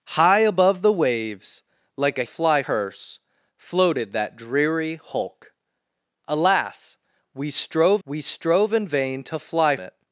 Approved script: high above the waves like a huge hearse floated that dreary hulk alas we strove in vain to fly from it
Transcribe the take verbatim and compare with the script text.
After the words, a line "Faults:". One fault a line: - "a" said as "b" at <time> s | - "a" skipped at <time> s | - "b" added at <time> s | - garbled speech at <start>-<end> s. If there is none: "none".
high above the waves like a fly hearse floated that dreary hulk alas we strove we strove in vain to fly it
Faults:
- "huge" said as "fly" at 2.2 s
- "we strove" added at 8.0 s
- "from" skipped at 9.8 s